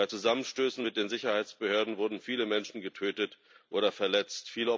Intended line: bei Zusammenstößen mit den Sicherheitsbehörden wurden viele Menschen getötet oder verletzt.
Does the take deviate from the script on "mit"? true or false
false